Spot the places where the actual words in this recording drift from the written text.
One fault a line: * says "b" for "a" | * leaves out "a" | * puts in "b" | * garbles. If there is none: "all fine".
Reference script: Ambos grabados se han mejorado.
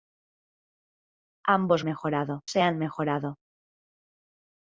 * says "mejorado" for "grabados"